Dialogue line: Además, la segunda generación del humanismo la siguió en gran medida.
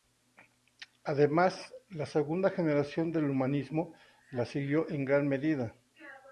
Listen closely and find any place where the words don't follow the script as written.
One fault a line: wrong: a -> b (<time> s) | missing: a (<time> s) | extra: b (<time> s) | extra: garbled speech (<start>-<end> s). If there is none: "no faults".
no faults